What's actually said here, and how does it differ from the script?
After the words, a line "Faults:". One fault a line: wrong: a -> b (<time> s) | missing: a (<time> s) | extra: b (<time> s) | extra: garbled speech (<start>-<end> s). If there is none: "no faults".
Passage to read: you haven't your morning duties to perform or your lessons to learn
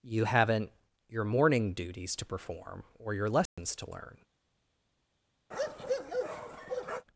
you haven't your morning duties to perform or your lessons to learn
Faults:
no faults